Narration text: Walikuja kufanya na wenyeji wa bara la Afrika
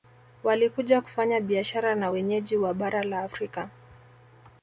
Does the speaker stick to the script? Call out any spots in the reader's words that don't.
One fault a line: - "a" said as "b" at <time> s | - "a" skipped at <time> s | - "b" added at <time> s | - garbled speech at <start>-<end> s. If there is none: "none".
- "biashara" added at 1.4 s